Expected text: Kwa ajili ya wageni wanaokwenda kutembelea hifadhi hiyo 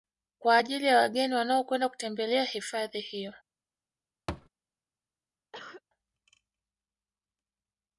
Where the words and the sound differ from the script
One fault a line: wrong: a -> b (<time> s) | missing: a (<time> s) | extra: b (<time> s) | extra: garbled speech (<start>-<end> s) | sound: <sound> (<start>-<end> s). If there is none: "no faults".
sound: thud (4.3-4.5 s)
sound: cough (5.5-5.8 s)